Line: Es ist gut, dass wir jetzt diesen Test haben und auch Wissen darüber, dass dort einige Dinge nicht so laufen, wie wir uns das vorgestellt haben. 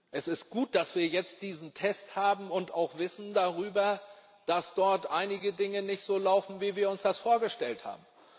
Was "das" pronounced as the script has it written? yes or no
yes